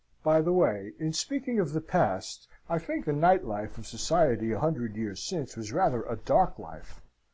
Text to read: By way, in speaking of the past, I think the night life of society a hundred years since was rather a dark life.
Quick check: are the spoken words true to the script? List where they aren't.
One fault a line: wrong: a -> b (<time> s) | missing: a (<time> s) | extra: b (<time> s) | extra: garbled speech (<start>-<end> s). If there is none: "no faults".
extra: the (0.4 s)